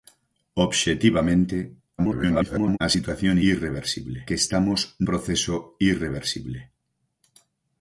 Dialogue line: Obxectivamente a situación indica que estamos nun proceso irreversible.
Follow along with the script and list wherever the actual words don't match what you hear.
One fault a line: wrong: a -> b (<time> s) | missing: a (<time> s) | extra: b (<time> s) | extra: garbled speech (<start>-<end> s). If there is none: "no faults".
extra: garbled speech (2.0-2.8 s)
wrong: indica -> irreversible (3.5 s)
missing: nun (4.8 s)